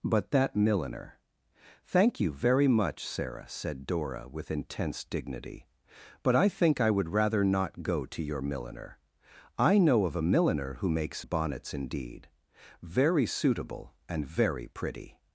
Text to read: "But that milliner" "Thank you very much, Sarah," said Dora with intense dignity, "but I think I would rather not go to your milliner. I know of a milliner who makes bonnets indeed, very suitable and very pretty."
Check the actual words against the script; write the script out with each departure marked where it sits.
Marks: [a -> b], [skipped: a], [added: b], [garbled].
"But that milliner" "Thank you very much, Sarah," said Dora with intense dignity, "but I think I would rather not go to your milliner. I know of a milliner who makes bonnets indeed, very suitable and very pretty."